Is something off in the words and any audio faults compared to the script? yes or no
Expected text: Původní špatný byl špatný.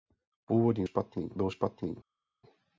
no